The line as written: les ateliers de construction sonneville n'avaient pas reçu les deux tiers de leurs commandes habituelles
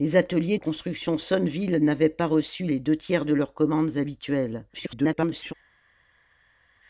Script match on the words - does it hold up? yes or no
no